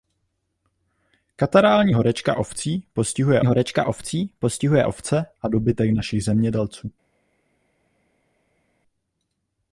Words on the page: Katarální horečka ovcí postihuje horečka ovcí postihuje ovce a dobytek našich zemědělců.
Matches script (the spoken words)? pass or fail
pass